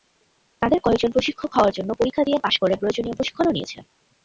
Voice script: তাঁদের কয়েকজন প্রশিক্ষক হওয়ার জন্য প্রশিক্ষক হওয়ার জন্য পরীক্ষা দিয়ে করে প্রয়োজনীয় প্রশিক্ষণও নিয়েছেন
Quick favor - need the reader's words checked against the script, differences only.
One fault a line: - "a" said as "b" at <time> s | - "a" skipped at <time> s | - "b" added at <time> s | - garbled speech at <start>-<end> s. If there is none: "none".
- "প্রশিক্ষক হওয়ার জন্য" skipped at 1.9 s
- "পাস" added at 2.4 s